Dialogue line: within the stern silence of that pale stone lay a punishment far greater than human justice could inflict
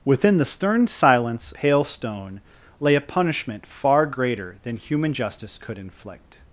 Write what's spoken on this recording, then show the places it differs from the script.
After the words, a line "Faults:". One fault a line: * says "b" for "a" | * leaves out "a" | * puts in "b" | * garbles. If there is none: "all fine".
within the stern silence pale stone lay a punishment far greater than human justice could inflict
Faults:
* leaves out "of that"